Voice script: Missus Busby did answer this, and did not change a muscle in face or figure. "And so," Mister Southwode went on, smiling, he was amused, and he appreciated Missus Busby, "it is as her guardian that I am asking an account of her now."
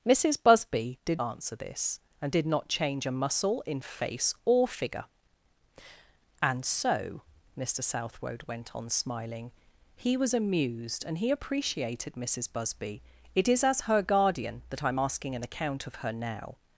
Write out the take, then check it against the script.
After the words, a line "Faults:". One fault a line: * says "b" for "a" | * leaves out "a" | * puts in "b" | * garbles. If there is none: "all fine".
Missus Busby did answer this, and did not change a muscle in face or figure. "And so," Mister Southwode went on, smiling, he was amused, and he appreciated Missus Busby, "it is as her guardian that I am asking an account of her now."
Faults:
all fine